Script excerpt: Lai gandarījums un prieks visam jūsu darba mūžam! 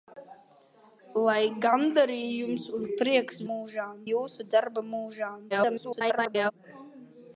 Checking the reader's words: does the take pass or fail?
fail